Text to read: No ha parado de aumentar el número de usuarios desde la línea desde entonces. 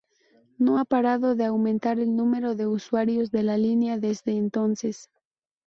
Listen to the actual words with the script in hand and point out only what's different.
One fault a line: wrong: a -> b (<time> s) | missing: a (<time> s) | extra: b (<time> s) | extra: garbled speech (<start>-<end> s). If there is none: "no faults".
wrong: desde -> de (3.3 s)